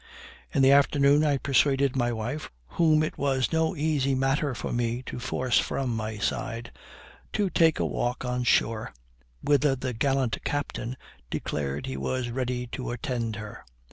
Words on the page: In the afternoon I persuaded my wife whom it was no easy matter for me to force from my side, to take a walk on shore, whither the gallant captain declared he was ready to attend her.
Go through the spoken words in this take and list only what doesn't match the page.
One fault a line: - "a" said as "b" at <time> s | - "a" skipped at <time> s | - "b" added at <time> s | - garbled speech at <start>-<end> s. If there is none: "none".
none